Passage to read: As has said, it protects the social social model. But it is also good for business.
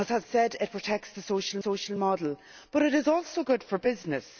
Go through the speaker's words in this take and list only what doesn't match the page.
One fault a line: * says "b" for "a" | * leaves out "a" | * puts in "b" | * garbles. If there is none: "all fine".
all fine